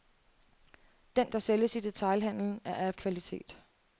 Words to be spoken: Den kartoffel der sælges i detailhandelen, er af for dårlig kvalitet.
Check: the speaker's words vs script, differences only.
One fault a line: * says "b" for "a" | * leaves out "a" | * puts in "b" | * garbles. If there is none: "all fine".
* leaves out "kartoffel"
* leaves out "for dårlig"